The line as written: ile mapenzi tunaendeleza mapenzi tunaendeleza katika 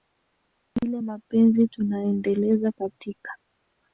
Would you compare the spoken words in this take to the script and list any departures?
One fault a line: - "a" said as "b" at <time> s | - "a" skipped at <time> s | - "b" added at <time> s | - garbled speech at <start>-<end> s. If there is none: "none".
- "mapenzi tunaendeleza" skipped at 2.7 s